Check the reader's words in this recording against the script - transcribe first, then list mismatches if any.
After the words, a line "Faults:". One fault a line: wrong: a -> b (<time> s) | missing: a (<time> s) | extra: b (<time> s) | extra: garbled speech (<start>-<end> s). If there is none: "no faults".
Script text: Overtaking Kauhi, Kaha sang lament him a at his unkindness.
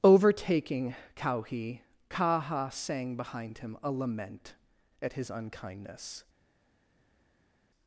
Overtaking Kauhi, Kaha sang behind him a lament at his unkindness.
Faults:
wrong: lament -> behind (3.1 s)
extra: lament (3.9 s)